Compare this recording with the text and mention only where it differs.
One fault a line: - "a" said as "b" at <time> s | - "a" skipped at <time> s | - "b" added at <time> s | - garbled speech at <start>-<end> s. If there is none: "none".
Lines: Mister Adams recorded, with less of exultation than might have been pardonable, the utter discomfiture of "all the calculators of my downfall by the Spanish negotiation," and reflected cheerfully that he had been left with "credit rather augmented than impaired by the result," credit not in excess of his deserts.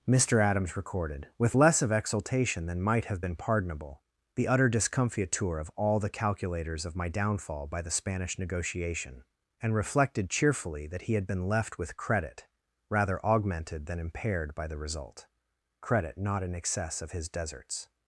none